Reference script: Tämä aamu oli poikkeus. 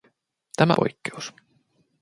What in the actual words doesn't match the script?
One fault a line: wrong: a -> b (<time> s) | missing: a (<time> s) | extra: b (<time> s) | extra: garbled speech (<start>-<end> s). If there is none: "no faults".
missing: aamu oli (0.7 s)